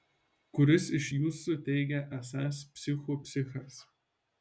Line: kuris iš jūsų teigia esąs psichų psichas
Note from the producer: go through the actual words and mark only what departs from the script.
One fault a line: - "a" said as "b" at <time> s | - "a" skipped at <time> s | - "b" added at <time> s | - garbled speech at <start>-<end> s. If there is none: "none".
none